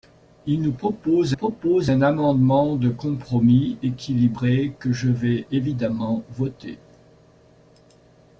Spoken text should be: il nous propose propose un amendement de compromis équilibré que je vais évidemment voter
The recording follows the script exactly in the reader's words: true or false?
true